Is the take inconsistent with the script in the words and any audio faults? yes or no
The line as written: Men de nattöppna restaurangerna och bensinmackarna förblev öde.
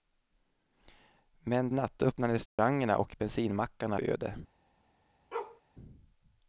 yes